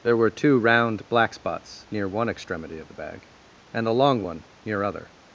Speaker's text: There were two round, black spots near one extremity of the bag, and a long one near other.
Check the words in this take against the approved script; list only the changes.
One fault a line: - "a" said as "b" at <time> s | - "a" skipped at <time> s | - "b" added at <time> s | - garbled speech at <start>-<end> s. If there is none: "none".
none